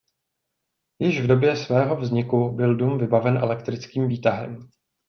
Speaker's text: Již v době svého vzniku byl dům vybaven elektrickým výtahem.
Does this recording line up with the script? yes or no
yes